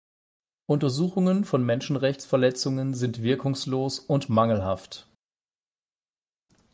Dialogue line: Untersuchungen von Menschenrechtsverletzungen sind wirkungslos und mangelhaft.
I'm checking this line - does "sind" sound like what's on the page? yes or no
yes